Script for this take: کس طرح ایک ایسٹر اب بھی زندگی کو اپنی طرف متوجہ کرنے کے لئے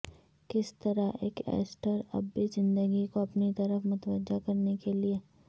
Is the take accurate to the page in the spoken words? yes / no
yes